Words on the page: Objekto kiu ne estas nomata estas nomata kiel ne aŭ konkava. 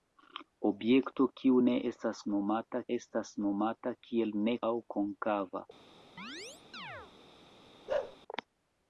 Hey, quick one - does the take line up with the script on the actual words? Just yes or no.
yes